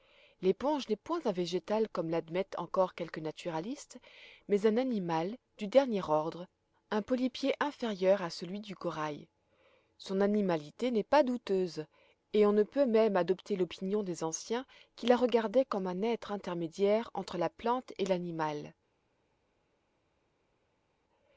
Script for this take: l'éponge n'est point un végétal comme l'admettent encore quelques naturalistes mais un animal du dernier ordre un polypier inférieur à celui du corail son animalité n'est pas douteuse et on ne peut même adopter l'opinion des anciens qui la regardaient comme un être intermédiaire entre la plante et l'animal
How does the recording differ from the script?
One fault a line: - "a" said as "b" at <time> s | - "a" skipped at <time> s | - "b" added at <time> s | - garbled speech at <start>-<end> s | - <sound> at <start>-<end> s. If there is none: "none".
none